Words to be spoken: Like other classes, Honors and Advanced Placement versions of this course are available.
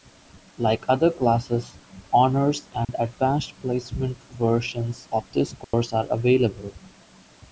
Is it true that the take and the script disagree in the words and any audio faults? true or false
true